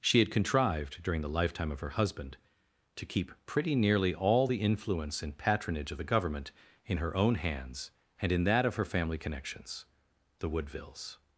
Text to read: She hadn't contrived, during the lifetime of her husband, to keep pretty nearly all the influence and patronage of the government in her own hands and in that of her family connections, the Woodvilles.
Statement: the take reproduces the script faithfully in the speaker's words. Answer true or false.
false